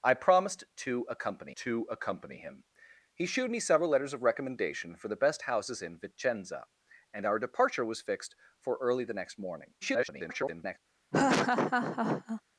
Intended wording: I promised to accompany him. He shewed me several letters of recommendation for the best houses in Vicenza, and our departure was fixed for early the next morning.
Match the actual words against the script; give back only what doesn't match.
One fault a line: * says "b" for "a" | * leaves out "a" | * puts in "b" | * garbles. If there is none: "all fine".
* puts in "to accompany"
* garbles